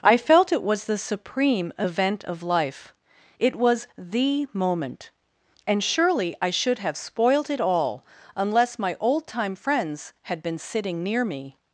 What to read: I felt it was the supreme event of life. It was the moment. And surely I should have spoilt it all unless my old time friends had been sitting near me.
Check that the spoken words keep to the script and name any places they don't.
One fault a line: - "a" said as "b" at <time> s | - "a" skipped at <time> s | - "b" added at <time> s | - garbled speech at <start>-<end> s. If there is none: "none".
none